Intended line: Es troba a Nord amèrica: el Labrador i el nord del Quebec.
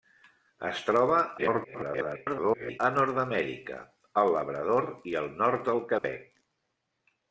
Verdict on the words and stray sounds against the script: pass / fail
fail